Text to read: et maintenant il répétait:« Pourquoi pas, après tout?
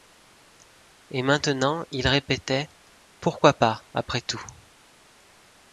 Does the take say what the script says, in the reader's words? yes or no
yes